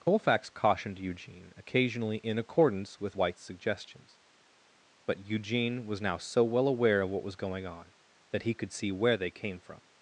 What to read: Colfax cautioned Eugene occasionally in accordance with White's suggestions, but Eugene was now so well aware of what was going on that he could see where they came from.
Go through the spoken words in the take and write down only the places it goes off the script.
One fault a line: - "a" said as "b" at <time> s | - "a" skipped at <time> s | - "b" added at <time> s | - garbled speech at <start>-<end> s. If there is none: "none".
none